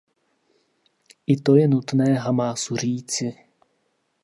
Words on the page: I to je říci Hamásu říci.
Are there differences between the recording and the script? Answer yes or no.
yes